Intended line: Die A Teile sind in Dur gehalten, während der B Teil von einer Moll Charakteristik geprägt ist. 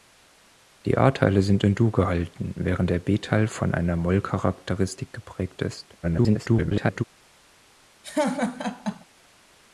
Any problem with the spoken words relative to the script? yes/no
yes